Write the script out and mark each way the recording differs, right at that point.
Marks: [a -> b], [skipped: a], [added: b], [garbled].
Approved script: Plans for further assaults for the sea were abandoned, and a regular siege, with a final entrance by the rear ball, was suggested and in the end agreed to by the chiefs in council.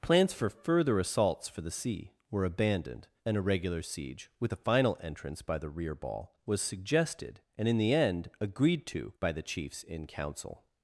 Plans for further assaults for the sea were abandoned, and a regular siege, with a final entrance by the rear ball, was suggested and in the end agreed to by the chiefs in council.